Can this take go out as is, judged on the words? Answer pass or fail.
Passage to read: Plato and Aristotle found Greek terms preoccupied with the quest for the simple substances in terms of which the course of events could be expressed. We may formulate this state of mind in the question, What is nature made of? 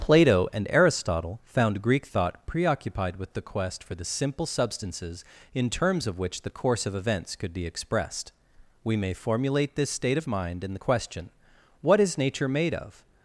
fail